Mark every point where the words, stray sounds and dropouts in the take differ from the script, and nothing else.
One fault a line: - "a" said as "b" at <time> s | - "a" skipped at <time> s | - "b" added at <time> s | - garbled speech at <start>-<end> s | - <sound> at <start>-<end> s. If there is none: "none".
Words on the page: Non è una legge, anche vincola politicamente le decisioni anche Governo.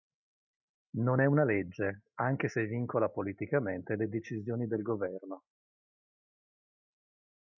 - "se" added at 2.4 s
- "anche" said as "del" at 4.7 s